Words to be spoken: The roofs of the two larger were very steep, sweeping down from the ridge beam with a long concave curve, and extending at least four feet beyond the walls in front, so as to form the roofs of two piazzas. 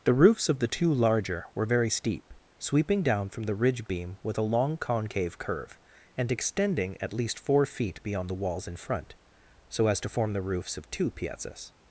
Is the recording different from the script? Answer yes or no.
no